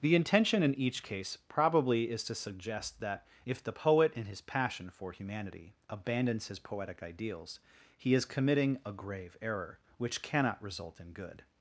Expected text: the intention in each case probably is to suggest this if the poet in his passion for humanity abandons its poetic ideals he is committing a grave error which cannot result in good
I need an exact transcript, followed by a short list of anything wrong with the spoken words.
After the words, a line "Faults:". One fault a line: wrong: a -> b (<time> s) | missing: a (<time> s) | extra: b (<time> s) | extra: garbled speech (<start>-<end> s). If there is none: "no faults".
the intention in each case probably is to suggest that if the poet in his passion for humanity abandons his poetic ideals he is committing a grave error which cannot result in good
Faults:
wrong: this -> that (3.0 s)
wrong: its -> his (6.5 s)